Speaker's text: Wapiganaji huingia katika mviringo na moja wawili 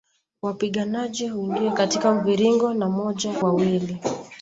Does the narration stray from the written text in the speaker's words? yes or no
no